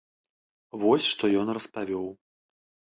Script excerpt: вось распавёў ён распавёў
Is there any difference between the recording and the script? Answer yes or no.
yes